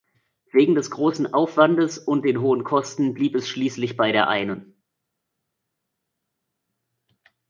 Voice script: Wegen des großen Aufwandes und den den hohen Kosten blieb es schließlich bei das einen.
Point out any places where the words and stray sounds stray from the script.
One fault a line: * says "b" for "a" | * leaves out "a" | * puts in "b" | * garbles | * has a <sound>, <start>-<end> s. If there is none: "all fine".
* leaves out "den"
* says "der" for "das"